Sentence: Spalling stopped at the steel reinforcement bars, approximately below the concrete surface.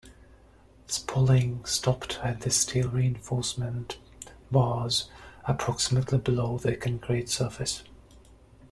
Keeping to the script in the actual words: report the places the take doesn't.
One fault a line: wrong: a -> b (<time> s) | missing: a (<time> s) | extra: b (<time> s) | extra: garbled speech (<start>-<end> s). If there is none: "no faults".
no faults